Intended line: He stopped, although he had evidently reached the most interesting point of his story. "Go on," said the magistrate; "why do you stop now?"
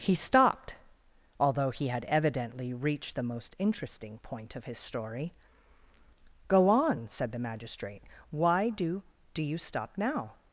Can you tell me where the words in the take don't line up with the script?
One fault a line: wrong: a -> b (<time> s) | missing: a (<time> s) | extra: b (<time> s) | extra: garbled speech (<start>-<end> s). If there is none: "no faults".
extra: do (9.3 s)